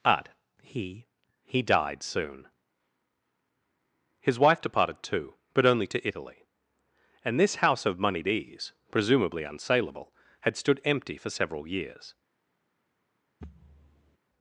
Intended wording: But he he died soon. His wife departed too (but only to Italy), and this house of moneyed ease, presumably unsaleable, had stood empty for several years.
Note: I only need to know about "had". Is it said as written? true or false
true